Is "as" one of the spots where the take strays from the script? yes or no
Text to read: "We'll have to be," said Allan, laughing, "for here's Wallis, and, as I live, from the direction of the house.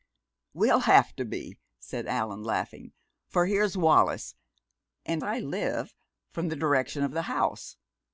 yes